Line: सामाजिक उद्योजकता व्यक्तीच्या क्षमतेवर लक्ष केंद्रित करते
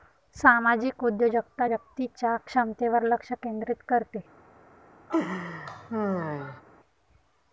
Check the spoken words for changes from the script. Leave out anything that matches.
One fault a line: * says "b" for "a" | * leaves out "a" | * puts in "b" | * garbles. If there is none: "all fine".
all fine